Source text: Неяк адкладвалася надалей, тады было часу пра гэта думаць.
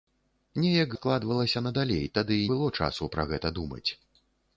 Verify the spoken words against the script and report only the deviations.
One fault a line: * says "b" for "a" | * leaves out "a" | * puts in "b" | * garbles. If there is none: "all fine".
all fine